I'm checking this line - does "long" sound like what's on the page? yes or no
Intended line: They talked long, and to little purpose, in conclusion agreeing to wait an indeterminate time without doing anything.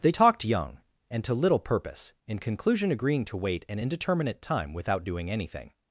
no